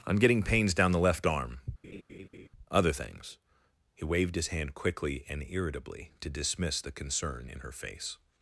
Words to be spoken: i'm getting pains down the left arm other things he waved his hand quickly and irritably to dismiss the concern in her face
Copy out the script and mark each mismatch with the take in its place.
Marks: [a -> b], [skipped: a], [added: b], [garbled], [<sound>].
i'm getting pains down the left arm [laugh] other things he waved his hand quickly and irritably to dismiss the concern in her face